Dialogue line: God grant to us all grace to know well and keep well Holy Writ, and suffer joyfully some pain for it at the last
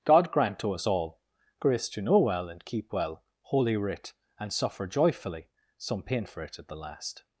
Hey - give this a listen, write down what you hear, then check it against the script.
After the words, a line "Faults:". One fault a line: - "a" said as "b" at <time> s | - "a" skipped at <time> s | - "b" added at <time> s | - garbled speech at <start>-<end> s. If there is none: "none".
God grant to us all grace to know well and keep well Holy Writ, and suffer joyfully some pain for it at the last
Faults:
none